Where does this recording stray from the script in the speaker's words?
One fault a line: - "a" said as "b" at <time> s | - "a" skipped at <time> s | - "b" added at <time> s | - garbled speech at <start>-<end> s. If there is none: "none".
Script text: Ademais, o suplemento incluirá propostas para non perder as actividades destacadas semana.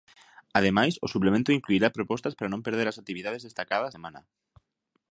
none